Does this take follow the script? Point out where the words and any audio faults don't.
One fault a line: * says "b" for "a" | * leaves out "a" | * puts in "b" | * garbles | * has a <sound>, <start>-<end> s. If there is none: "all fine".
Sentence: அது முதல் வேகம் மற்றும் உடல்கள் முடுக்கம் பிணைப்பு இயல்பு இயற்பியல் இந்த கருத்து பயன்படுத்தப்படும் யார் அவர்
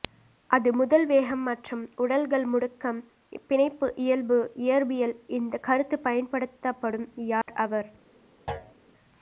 * has a dropout, 7.4-7.5 s
* has a thud, 8.5-8.7 s